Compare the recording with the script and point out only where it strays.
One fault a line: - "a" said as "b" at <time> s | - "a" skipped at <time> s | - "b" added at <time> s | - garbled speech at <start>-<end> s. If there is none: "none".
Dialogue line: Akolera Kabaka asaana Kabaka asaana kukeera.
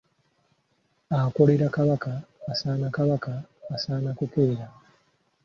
none